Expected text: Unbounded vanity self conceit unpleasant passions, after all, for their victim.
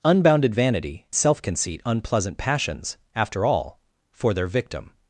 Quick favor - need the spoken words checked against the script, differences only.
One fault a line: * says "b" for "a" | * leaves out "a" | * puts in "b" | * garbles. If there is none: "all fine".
all fine